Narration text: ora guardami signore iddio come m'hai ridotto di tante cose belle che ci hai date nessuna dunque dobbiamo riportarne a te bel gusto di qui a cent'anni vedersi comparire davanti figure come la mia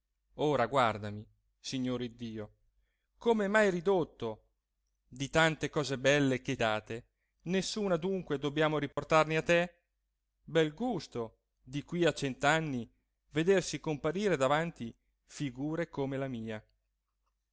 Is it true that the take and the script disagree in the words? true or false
true